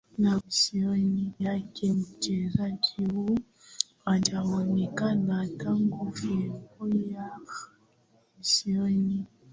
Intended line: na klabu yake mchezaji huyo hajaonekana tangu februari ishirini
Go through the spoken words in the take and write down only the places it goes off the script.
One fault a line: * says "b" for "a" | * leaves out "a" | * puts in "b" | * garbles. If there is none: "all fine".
* says "ishirini" for "klabu"